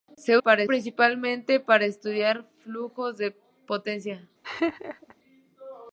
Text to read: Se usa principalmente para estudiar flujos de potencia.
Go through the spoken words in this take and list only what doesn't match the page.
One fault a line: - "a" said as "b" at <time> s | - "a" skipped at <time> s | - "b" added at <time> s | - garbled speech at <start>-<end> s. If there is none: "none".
- "usa" said as "para" at 0.4 s